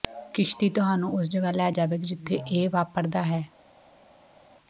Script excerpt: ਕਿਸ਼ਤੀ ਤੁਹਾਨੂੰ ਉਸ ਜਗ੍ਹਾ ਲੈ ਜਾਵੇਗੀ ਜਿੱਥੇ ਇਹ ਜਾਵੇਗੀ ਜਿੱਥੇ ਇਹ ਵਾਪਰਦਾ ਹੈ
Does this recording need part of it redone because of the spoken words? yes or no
yes